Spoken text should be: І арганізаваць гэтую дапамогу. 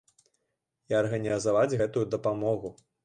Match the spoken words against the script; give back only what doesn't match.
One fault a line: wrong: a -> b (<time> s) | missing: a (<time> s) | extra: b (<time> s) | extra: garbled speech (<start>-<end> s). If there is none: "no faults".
no faults